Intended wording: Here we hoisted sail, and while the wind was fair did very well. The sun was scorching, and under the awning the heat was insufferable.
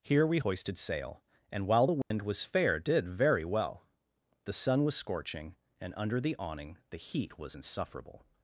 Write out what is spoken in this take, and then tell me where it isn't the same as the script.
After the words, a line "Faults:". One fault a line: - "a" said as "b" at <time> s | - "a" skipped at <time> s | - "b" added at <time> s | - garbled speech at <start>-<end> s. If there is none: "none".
Here we hoisted sail, and while the wind was fair did very well. The sun was scorching, and under the awning the heat was insufferable.
Faults:
none